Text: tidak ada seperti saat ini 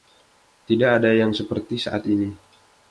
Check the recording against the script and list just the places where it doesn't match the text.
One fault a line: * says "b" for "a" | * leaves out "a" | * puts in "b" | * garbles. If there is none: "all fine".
* puts in "yang"